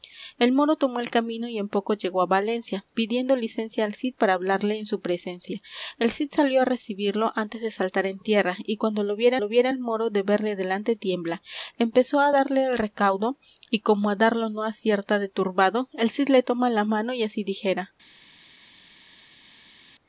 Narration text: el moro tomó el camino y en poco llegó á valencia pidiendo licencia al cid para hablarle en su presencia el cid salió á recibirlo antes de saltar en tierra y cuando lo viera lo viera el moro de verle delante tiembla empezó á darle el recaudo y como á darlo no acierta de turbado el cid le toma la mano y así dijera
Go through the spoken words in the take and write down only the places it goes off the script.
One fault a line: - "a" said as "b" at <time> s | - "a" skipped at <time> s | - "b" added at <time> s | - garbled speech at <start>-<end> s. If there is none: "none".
none